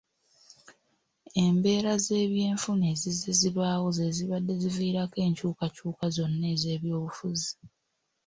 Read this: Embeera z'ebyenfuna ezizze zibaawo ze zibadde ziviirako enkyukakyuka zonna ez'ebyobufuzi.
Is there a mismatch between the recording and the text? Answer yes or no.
no